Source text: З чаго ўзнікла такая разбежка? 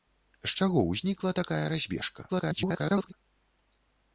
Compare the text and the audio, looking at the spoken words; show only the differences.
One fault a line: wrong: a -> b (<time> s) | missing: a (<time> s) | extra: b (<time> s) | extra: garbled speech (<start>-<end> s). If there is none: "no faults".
extra: garbled speech (2.3-3.1 s)